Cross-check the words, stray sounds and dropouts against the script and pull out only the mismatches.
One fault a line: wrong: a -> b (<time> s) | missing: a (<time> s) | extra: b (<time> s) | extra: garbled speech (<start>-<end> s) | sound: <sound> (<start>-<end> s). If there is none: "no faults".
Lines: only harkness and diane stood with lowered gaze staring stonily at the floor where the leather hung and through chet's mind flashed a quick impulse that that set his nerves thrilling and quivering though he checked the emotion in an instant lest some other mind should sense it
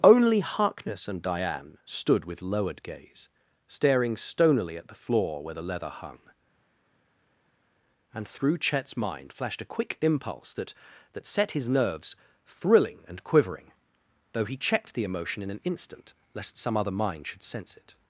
no faults